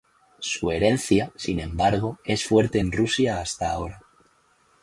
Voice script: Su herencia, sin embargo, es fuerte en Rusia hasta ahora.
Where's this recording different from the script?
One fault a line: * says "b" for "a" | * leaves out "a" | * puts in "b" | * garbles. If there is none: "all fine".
all fine